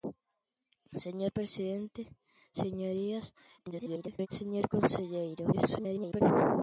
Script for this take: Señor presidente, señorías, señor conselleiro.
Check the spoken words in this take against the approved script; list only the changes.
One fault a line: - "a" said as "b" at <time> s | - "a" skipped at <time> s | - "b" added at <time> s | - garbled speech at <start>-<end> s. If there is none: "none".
- garbled speech at 3.6-4.3 s
- garbled speech at 5.5-6.2 s